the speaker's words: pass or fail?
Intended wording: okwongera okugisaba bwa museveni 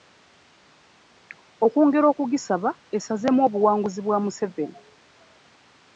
fail